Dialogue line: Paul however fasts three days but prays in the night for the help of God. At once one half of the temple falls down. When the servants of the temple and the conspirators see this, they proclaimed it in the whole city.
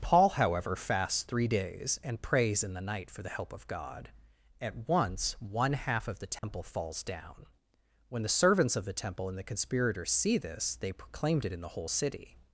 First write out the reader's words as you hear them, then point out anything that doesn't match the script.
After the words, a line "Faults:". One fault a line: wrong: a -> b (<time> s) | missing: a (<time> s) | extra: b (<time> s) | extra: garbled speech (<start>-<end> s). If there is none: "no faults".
Paul however fasts three days and prays in the night for the help of God. At once one half of the temple falls down. When the servants of the temple and the conspirators see this, they proclaimed it in the whole city.
Faults:
wrong: but -> and (2.0 s)